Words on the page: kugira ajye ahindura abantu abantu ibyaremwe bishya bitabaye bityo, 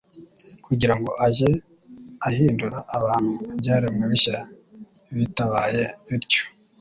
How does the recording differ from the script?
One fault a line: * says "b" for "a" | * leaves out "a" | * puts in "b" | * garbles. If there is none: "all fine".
* puts in "ngo"
* leaves out "abantu"